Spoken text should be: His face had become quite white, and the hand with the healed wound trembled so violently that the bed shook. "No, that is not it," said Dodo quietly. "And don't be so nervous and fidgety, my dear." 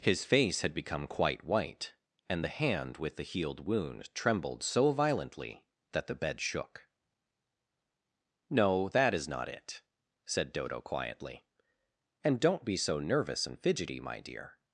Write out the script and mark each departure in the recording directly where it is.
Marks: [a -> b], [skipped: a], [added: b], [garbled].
His face had become quite white, and the hand with the healed wound trembled so violently that the bed shook. "No, that is not it," said Dodo quietly. "And don't be so nervous and fidgety, my dear."